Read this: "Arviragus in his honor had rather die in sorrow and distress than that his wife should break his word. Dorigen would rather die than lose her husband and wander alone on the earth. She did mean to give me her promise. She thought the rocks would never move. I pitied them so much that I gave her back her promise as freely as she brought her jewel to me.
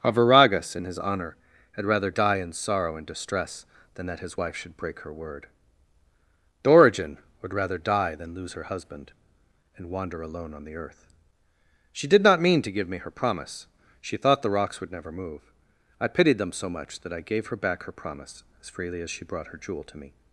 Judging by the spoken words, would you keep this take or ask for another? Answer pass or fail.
fail